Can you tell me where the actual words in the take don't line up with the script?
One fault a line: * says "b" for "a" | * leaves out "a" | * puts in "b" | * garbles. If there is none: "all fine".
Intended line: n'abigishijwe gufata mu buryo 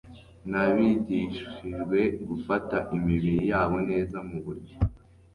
* puts in "imibiri yabo neza"